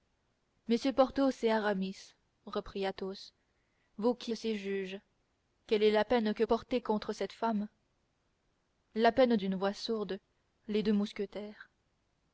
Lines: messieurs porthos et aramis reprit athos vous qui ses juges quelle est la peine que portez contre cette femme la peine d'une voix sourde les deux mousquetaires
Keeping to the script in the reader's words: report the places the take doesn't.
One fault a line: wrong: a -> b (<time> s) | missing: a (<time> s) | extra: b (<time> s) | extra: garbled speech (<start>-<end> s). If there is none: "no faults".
no faults